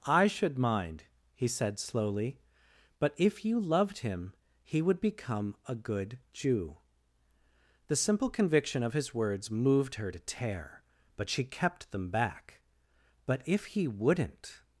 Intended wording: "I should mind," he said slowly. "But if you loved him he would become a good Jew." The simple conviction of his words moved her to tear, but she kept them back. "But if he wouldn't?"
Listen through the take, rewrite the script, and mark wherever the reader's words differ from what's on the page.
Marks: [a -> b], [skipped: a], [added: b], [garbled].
"I should mind," he said slowly. "But if you loved him he would become a good Jew." The simple conviction of his words moved her to tear, but she kept them back. "But if he wouldn't?"